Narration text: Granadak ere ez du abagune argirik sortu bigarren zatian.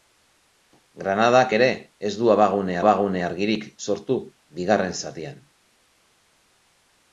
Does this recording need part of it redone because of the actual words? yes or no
yes